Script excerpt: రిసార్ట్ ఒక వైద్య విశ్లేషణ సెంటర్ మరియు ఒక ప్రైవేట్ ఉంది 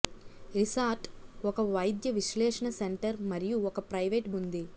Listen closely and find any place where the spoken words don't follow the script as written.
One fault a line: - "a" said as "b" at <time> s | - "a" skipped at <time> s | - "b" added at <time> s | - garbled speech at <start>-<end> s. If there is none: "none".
none